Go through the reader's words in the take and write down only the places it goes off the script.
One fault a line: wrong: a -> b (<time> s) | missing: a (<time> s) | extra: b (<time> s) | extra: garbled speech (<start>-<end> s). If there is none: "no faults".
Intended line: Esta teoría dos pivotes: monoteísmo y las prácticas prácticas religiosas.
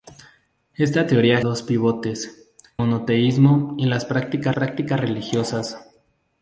no faults